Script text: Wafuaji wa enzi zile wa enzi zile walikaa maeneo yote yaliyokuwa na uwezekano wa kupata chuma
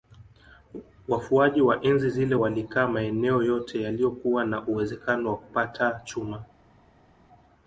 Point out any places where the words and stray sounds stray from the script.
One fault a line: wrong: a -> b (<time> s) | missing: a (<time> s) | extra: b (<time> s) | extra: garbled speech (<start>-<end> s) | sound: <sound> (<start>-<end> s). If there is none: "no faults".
missing: wa enzi zile (2.4 s)